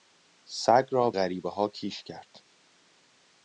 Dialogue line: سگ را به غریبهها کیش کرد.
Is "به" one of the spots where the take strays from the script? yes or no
yes